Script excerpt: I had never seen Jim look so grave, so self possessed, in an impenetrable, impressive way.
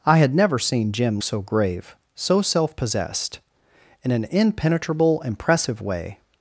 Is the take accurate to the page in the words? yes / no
no